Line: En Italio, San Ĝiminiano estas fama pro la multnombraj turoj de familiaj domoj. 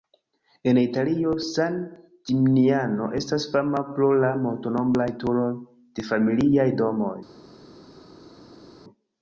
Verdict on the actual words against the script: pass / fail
pass